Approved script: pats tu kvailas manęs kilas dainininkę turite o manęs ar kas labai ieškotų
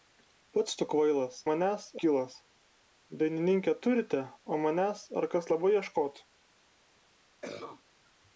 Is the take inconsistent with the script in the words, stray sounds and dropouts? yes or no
yes